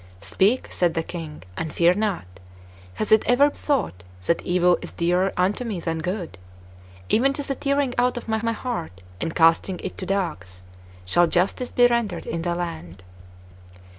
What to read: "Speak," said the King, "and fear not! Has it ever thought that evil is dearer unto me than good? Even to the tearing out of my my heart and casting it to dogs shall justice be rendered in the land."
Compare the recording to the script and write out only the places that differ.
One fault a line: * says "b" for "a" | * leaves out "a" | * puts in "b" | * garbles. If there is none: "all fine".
all fine